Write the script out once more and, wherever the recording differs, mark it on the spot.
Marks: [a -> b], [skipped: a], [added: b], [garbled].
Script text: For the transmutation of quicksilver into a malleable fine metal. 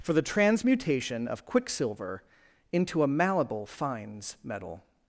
For the transmutation of quicksilver into a malleable [fine -> fines] metal.